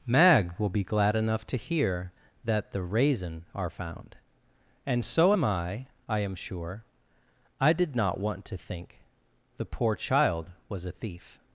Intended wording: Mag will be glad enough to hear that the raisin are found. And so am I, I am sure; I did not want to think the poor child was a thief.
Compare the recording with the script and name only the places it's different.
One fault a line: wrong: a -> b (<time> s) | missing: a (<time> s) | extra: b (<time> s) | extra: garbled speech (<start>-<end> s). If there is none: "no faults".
no faults